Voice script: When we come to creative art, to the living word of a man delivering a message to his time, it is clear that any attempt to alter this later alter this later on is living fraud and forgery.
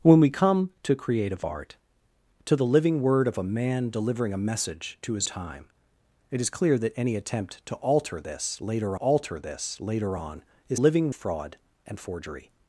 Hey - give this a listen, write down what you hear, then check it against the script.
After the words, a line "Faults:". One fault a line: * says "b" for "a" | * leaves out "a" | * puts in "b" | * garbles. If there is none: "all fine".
When we come to creative art, to the living word of a man delivering a message to his time, it is clear that any attempt to alter this later alter this later on is living fraud and forgery.
Faults:
all fine